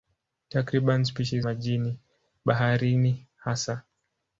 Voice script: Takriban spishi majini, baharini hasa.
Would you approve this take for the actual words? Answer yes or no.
yes